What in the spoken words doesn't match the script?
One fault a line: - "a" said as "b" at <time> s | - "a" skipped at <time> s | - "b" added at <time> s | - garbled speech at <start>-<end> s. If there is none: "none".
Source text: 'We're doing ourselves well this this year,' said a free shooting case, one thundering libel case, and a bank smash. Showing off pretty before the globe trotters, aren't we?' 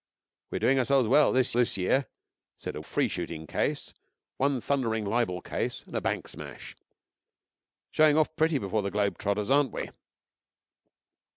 none